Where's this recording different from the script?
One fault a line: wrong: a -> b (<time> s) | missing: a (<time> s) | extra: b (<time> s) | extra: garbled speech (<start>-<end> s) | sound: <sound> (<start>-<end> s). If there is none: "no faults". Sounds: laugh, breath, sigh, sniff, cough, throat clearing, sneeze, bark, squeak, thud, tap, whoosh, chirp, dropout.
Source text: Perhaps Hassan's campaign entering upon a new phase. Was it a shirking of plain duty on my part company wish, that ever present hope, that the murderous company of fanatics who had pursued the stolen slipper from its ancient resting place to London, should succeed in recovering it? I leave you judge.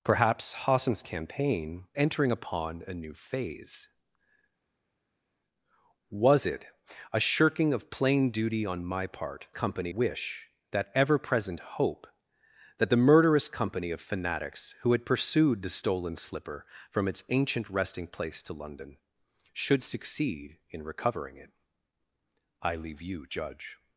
no faults